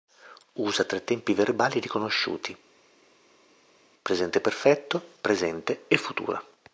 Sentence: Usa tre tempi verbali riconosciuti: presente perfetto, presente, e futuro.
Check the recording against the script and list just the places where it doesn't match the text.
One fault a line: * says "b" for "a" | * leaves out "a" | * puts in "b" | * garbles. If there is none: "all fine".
all fine